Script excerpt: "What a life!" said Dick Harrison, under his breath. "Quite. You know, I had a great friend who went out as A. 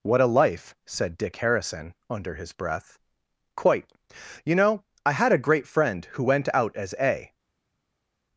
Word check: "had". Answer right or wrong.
right